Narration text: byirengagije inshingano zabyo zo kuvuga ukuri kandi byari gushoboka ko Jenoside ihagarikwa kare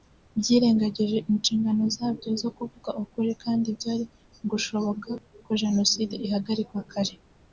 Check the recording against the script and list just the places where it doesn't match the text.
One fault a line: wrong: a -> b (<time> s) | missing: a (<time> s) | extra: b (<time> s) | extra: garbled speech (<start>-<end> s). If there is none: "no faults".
no faults